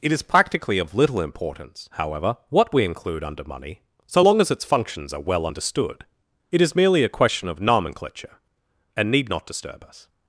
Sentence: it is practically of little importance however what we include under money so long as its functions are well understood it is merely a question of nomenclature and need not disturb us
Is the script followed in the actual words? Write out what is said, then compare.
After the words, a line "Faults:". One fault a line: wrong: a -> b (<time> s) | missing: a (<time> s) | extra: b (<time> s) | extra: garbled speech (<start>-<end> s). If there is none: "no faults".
it is practically of little importance however what we include under money so long as its functions are well understood it is merely a question of nomenclature and need not disturb us
Faults:
no faults